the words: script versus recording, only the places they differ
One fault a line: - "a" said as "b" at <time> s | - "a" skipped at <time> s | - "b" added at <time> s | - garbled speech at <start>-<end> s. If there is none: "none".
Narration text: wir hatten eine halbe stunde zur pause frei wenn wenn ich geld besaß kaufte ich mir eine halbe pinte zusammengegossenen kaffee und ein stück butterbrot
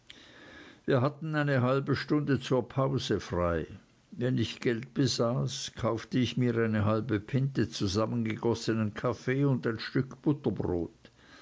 - "wenn" skipped at 4.4 s